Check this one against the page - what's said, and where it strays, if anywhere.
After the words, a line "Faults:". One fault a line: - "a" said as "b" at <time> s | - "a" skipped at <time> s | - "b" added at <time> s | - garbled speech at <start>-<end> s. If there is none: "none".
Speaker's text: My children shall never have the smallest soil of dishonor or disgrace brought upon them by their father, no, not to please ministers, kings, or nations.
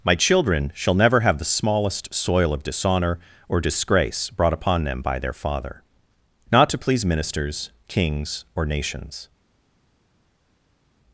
My children shall never have the smallest soil of dishonor or disgrace brought upon them by their father, not to please ministers, kings, or nations.
Faults:
- "no" skipped at 5.8 s